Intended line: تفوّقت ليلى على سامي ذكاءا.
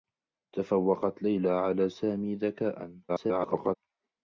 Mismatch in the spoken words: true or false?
true